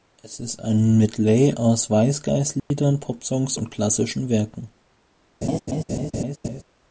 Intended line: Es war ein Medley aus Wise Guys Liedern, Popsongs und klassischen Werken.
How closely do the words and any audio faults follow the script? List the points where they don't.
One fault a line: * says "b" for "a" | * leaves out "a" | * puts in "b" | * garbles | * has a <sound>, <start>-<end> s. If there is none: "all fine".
* says "ist" for "war"
* has a dropout, 2.6-2.7 s
* has a laugh, 5.4-6.6 s